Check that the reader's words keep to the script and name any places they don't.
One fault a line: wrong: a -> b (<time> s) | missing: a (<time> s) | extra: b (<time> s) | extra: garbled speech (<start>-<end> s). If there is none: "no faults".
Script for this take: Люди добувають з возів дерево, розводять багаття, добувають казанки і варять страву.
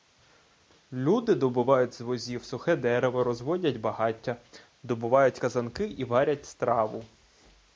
extra: сухе (2.4 s)